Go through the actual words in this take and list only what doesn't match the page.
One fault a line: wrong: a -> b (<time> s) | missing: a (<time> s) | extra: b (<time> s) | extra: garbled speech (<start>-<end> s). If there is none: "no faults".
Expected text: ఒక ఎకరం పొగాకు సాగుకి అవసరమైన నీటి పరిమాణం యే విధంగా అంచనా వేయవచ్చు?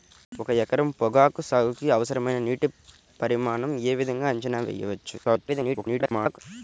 extra: garbled speech (5.2-6.4 s)